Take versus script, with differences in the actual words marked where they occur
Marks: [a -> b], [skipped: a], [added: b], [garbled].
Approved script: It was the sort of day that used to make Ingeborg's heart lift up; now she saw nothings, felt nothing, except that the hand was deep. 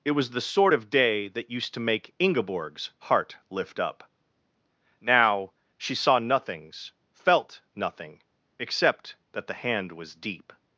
It was the sort of day that used to make Ingeborg's heart lift up; now she saw nothings, felt nothing, except that the hand was deep.